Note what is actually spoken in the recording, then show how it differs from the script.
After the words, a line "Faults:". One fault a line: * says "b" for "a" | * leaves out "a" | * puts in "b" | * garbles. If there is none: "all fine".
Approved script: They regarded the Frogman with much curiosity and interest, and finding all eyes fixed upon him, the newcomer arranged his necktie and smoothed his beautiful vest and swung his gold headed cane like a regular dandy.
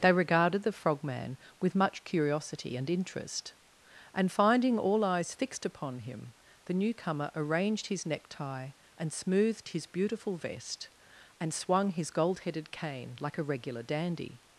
They regarded the Frogman with much curiosity and interest, and finding all eyes fixed upon him, the newcomer arranged his necktie and smoothed his beautiful vest and swung his gold headed cane like a regular dandy.
Faults:
all fine